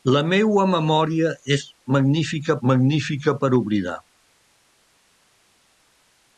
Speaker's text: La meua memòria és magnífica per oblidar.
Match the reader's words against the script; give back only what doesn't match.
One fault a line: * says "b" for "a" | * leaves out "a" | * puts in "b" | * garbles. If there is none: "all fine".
* puts in "magnífica"